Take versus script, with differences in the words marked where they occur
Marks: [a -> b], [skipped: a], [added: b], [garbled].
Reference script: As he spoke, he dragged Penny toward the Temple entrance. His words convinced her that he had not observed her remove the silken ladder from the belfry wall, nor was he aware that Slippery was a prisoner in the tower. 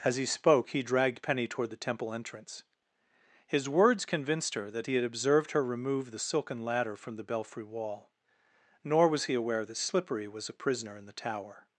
As he spoke, he dragged Penny toward the Temple entrance. His words convinced her that he had [skipped: not] observed her remove the silken ladder from the belfry wall, nor was he aware that Slippery was a prisoner in the tower.